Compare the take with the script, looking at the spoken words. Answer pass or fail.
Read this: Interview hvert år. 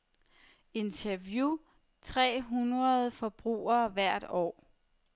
fail